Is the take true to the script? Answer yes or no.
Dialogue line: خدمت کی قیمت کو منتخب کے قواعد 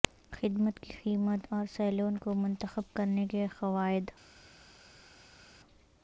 no